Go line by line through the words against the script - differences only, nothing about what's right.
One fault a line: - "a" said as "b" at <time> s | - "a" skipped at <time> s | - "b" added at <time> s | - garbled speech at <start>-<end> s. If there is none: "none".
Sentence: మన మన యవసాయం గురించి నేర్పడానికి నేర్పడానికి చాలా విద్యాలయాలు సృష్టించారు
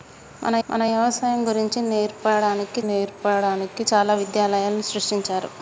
none